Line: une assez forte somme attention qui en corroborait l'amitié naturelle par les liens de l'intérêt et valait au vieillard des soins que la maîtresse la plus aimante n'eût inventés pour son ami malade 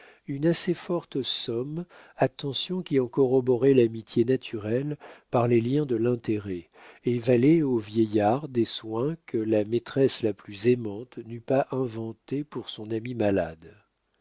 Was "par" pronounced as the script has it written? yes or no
yes